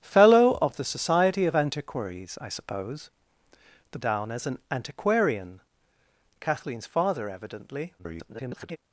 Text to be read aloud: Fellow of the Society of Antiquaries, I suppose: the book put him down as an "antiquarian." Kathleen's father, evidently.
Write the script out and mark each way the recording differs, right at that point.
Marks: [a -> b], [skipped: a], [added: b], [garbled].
Fellow of the Society of Antiquaries, I suppose: the [skipped: book put him] down as an "antiquarian." Kathleen's father, evidently. [garbled]